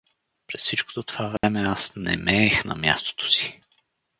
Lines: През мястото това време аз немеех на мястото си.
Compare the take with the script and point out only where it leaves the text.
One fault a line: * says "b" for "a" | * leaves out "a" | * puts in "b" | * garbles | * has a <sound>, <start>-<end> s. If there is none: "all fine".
* says "всичкото" for "мястото"
* has a dropout, 1.4-1.4 s